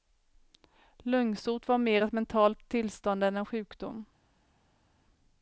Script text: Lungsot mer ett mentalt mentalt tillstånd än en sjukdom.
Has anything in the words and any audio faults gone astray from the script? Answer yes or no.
yes